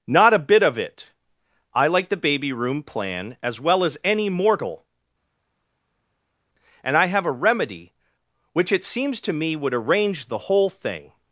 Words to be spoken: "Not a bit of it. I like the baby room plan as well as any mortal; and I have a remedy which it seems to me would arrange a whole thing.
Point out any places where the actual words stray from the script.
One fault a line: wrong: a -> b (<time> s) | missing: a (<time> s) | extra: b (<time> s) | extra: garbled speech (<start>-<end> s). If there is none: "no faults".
wrong: a -> the (10.3 s)